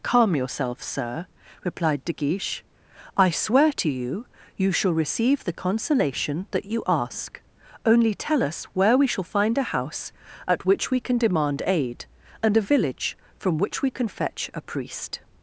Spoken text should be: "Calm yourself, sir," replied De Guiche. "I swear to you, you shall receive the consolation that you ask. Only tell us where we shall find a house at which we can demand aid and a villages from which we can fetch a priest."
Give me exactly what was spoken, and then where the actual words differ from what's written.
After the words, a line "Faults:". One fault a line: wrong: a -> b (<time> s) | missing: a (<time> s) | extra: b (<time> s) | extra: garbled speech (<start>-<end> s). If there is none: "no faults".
"Calm yourself, sir," replied De Guiche. "I swear to you, you shall receive the consolation that you ask. Only tell us where we shall find a house at which we can demand aid and a village from which we can fetch a priest."
Faults:
wrong: villages -> village (12.6 s)